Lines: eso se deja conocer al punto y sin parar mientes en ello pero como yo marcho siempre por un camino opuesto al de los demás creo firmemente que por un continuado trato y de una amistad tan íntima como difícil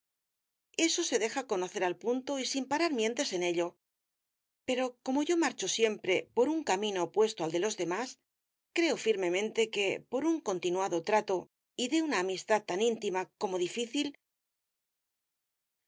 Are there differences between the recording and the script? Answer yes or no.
no